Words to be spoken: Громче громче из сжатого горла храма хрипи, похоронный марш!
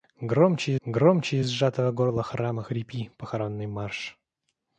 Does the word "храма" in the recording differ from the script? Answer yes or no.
no